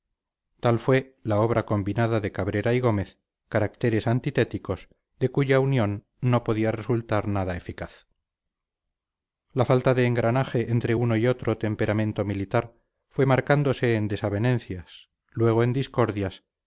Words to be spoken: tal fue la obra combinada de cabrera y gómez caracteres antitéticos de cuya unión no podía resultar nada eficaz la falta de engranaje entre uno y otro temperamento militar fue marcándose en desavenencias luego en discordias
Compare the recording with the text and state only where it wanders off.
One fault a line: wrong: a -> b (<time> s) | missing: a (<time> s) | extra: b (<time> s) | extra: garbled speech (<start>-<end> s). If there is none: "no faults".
no faults